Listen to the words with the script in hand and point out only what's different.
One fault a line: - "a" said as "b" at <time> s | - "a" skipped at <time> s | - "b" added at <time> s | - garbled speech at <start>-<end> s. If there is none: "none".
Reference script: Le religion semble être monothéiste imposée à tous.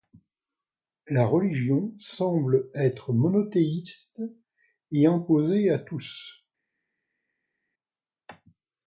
- "Le" said as "La" at 1.1 s
- "et" added at 4.9 s